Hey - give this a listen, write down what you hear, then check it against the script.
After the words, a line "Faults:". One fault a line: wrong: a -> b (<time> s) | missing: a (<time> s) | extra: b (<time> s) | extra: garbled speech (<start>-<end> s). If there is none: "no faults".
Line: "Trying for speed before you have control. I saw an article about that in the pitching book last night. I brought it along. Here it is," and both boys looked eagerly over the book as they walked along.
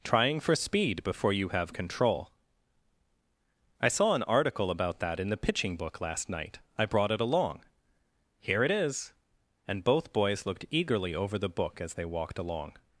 "Trying for speed before you have control. I saw an article about that in the pitching book last night. I brought it along. Here it is," and both boys looked eagerly over the book as they walked along.
Faults:
no faults